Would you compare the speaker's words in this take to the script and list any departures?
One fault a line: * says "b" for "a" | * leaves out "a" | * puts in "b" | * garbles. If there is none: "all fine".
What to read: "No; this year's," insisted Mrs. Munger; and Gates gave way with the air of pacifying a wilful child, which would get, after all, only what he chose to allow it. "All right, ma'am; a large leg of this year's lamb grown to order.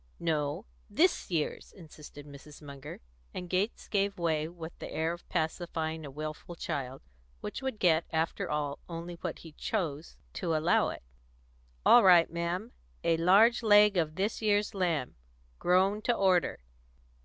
all fine